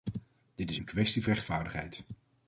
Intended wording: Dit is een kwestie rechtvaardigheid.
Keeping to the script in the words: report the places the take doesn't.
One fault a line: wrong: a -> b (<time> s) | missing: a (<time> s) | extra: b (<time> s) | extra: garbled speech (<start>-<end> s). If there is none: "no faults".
no faults